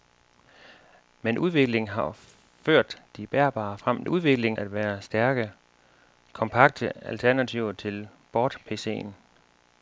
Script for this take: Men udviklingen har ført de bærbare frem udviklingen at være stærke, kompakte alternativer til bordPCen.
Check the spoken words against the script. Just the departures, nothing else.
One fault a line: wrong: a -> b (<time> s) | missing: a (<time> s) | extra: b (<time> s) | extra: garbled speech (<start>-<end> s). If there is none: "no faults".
no faults